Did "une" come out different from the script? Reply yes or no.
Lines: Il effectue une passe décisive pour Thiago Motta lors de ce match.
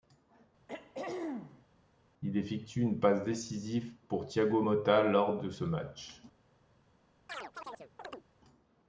no